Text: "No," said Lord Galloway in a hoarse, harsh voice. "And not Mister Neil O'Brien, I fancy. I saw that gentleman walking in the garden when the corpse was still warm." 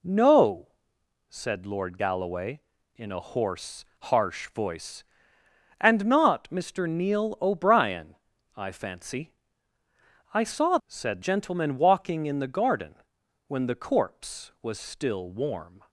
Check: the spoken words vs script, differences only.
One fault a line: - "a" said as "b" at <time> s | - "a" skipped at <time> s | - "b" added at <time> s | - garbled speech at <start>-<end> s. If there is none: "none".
- "that" said as "said" at 10.9 s